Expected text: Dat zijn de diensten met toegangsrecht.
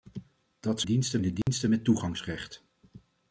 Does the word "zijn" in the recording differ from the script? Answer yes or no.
yes